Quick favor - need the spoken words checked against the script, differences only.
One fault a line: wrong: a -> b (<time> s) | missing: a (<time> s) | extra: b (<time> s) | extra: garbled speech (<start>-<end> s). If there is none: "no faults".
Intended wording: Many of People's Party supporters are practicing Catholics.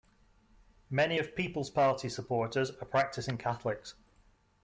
no faults